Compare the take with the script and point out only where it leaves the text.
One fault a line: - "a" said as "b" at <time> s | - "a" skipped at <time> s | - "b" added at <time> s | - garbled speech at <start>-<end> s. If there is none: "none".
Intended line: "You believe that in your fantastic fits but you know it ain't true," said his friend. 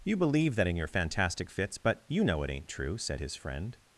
none